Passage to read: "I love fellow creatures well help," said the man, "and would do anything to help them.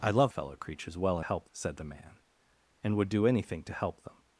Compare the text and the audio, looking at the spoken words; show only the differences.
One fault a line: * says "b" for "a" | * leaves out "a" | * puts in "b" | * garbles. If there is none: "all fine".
all fine